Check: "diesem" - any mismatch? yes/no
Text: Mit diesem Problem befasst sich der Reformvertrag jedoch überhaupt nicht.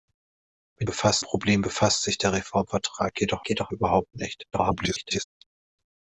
yes